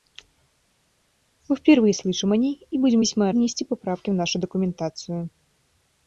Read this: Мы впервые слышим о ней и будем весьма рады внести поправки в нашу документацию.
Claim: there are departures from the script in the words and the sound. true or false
true